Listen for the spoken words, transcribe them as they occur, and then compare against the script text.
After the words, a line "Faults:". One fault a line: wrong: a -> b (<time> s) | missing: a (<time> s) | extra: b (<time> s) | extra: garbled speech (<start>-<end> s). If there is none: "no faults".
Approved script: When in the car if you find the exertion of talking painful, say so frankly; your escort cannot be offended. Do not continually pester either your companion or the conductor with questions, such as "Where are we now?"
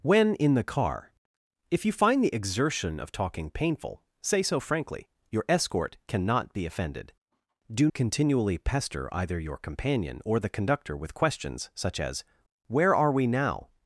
When in the car if you find the exertion of talking painful, say so frankly; your escort cannot be offended. Do continually pester either your companion or the conductor with questions, such as "Where are we now?"
Faults:
missing: not (7.9 s)